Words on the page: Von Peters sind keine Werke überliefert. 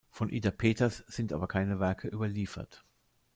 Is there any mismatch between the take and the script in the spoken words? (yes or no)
yes